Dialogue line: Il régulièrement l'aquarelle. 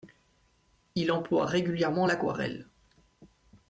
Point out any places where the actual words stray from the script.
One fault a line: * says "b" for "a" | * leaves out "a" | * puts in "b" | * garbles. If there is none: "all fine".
* puts in "emploie"